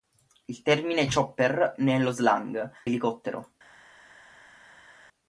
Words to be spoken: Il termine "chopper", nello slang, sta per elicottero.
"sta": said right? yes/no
no